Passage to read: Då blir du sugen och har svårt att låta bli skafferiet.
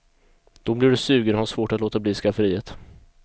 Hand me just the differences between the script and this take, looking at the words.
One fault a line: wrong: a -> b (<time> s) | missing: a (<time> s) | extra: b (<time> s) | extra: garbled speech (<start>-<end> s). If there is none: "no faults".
no faults